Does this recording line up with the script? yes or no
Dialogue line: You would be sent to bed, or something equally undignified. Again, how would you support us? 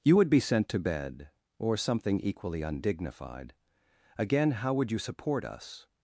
yes